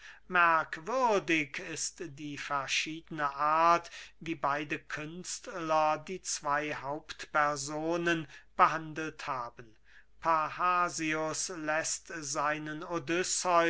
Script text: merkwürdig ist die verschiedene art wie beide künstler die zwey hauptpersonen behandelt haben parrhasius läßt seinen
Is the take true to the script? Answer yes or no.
yes